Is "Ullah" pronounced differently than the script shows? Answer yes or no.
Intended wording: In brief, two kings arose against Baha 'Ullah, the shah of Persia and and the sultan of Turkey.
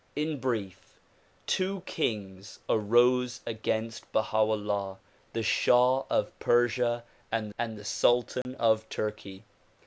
no